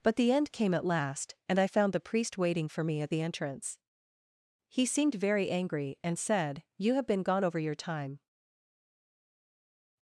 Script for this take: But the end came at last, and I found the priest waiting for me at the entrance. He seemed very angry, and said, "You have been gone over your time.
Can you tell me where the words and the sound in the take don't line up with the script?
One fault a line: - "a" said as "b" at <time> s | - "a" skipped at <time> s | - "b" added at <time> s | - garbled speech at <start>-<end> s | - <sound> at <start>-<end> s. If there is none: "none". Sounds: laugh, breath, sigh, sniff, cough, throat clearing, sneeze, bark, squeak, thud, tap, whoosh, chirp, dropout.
none